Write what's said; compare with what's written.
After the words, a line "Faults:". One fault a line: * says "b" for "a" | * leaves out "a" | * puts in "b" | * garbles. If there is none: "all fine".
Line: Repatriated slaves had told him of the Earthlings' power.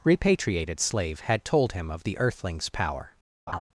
Repatriated slave had told him of the Earthlings' power.
Faults:
* says "slave" for "slaves"